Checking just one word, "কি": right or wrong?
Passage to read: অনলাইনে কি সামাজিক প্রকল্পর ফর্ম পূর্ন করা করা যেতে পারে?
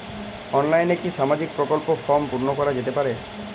right